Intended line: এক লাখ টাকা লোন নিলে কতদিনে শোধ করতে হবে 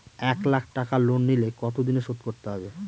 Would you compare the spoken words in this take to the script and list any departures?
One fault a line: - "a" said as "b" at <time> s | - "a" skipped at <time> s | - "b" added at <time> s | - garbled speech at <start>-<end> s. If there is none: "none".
none